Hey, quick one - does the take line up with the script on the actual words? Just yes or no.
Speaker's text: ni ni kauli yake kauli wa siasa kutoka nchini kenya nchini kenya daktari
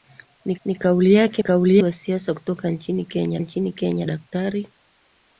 yes